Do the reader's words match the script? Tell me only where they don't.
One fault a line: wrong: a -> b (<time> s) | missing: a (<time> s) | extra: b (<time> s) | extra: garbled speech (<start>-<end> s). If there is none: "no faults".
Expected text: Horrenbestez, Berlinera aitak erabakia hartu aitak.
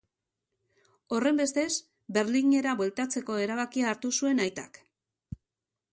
wrong: aitak -> bueltatzeko (2.8 s)
extra: zuen (4.2 s)